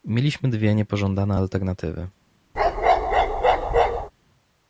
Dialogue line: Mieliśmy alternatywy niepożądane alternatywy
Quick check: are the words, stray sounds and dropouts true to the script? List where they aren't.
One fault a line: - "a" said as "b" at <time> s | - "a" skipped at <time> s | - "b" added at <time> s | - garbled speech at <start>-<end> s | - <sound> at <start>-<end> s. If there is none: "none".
- "alternatywy" said as "dwie" at 0.5 s
- bark at 2.6-4.1 s